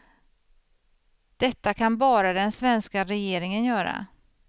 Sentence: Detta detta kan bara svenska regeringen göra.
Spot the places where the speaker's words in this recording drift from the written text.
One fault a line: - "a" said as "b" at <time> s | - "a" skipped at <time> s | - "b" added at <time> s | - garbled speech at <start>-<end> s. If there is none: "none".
- "detta" skipped at 1.7 s
- "den" added at 2.3 s